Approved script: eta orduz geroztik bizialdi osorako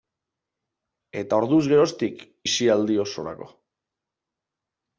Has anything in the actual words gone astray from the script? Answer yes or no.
no